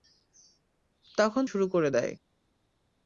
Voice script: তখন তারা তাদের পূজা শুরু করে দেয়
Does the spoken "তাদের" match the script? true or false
false